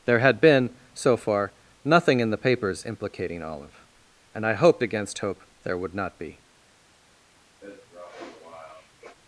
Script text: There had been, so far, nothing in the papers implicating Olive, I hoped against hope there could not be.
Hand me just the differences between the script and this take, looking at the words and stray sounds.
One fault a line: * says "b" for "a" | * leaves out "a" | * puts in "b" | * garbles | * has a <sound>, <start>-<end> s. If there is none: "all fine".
* puts in "and"
* says "would" for "could"
* has a sniff, 7.6-9.2 s